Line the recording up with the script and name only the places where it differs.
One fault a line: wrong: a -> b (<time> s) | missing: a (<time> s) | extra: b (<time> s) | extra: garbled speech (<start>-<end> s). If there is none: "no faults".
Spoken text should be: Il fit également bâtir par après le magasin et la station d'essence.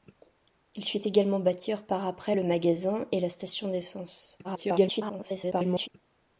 extra: garbled speech (4.4-5.9 s)